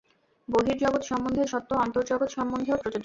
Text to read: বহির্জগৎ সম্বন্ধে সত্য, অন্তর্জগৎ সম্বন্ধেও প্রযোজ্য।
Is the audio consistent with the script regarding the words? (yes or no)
yes